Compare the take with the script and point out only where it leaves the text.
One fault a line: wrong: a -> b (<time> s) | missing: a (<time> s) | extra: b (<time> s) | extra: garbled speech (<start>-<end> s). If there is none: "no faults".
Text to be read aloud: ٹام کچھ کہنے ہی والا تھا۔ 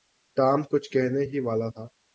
no faults